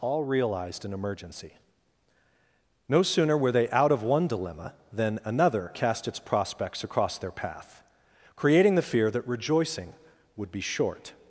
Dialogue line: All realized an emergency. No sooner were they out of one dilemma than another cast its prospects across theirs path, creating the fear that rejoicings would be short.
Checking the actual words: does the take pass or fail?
fail